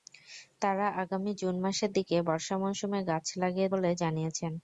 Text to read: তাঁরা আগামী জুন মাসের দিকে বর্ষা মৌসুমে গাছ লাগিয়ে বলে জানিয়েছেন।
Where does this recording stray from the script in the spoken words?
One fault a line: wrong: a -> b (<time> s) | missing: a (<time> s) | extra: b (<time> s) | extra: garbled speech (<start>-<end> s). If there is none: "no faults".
no faults